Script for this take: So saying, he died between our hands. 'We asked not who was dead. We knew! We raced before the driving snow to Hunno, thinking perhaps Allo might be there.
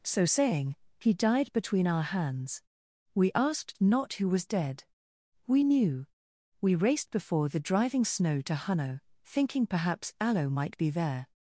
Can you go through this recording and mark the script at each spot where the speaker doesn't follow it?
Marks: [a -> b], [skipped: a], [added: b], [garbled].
So saying, he died between our hands. 'We asked not who was dead. We knew! We raced before the driving snow to Hunno, thinking perhaps Allo might be there.